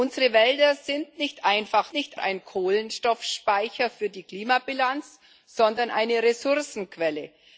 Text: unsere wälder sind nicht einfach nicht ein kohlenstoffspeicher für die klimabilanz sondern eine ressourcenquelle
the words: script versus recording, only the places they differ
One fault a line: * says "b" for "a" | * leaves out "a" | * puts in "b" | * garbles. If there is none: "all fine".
all fine